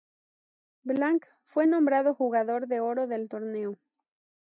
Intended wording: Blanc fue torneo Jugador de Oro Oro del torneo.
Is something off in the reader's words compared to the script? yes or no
yes